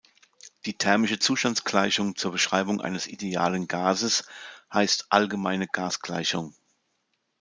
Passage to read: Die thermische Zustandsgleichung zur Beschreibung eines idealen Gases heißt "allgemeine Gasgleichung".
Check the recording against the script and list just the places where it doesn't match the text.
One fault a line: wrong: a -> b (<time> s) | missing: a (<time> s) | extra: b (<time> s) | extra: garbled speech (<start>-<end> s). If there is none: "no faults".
no faults